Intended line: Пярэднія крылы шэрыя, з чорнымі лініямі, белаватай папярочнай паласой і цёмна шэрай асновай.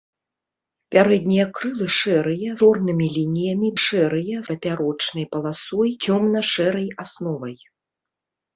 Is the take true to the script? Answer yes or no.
no